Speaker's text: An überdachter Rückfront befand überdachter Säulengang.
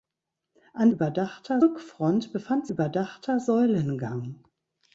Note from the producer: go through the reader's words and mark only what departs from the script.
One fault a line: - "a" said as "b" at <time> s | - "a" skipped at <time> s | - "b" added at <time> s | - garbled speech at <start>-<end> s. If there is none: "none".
none